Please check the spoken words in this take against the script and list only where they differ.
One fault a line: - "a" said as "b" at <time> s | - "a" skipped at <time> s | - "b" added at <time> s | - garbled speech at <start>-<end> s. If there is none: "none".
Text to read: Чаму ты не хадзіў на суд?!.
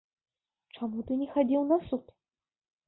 none